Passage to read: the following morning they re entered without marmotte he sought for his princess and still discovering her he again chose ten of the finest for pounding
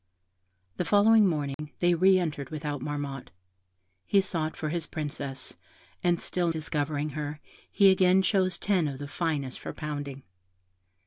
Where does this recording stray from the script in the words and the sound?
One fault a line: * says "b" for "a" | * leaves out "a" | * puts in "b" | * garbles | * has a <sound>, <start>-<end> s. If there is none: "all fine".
* has a dropout, 1.5-1.6 s